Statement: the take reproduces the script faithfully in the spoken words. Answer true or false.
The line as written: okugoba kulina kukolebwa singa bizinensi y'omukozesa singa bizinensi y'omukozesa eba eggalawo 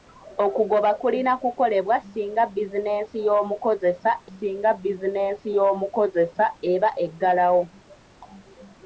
true